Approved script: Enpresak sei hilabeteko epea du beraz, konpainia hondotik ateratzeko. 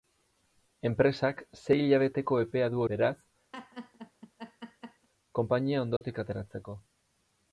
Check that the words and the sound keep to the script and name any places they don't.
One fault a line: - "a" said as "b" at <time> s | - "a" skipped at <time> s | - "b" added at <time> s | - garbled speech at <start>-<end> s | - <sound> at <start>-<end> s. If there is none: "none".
- laugh at 3.5-5.1 s
- dropout at 6.0-6.0 s